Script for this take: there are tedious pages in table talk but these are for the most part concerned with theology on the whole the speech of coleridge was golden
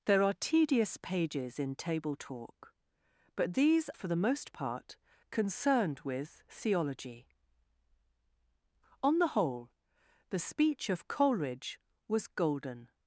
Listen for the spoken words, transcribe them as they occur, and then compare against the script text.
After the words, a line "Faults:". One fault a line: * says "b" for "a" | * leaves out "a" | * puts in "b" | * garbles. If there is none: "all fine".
there are tedious pages in table talk but these for the most part concerned with theology on the whole the speech of coleridge was golden
Faults:
* leaves out "are"